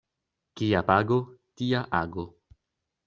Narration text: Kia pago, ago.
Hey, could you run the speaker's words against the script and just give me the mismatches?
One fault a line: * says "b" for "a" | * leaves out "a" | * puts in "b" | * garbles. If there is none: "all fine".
* puts in "tia"